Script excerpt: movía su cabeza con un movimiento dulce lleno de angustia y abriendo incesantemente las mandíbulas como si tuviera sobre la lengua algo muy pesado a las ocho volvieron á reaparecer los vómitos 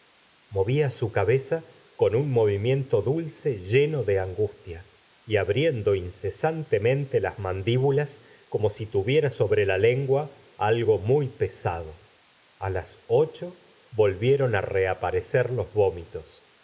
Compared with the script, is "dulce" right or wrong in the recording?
right